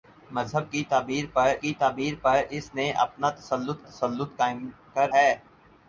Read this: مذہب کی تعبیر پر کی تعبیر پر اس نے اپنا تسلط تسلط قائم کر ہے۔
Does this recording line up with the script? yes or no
yes